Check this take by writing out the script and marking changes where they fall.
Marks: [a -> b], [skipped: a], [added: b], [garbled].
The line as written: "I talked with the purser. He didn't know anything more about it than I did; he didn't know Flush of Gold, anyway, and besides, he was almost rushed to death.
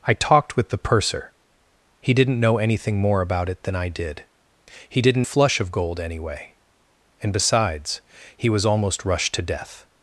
"I talked with the purser. He didn't know anything more about it than I did; he didn't [skipped: know] Flush of Gold, anyway, and besides, he was almost rushed to death.